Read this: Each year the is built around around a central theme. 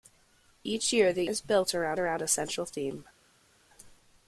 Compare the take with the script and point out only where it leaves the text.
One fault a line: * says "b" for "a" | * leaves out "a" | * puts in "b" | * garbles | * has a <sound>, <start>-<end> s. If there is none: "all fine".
all fine